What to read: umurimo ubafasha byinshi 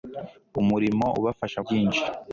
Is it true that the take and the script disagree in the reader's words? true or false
false